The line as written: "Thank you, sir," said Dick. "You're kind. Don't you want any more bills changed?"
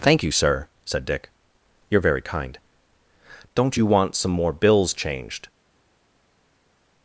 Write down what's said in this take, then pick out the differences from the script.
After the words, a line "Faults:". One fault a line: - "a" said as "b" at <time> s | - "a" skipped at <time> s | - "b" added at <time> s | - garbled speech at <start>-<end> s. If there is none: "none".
"Thank you, sir," said Dick. "You're very kind. Don't you want some more bills changed?"
Faults:
- "very" added at 2.0 s
- "any" said as "some" at 4.2 s